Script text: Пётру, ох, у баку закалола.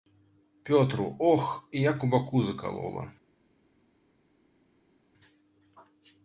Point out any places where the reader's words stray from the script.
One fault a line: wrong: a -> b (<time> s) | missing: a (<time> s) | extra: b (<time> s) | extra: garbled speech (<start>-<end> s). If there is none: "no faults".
extra: як (1.7 s)